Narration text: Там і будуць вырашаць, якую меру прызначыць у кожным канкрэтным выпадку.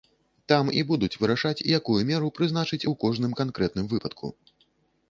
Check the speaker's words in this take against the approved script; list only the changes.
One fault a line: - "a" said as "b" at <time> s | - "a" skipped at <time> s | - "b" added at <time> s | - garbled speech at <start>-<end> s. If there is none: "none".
none